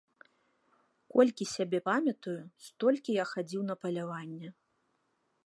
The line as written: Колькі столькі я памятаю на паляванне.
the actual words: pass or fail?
fail